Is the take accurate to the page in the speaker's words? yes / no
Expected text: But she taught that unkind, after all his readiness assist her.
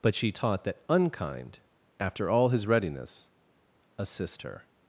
yes